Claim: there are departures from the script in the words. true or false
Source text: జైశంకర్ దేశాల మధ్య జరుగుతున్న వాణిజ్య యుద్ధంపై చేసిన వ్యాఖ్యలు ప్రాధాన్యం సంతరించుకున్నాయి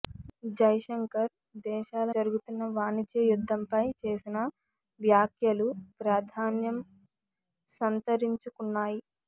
true